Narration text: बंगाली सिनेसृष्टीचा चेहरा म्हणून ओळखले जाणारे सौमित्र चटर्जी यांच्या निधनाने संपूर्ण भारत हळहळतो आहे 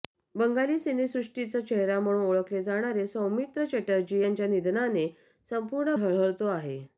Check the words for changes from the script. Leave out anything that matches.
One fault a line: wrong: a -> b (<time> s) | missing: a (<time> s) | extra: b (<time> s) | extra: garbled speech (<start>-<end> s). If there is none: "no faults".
missing: भारत (6.0 s)